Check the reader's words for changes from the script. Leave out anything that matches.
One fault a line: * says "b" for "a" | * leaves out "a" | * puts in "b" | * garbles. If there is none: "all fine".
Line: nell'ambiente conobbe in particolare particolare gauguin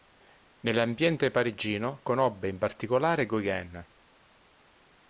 * puts in "parigino"
* leaves out "particolare"